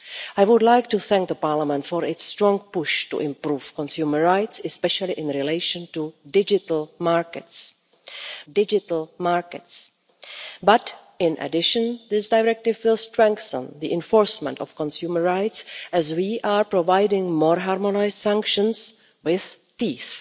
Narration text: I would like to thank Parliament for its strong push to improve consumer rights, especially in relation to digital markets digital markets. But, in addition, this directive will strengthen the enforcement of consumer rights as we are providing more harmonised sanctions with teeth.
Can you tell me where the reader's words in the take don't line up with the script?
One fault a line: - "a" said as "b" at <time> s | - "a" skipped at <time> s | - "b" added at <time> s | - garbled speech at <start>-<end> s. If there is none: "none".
none